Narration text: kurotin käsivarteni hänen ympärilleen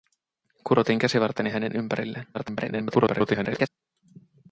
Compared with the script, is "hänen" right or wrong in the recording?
right